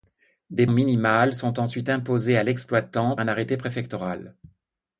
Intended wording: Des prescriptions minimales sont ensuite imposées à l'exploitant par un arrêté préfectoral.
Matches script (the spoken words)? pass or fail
fail